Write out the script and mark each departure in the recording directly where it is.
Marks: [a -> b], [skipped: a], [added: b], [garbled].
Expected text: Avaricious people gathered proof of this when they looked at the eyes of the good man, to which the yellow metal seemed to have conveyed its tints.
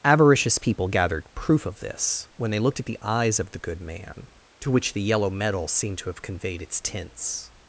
Avaricious people gathered proof of this when they looked at the eyes of the good man, to which the yellow metal seemed to have conveyed its tints.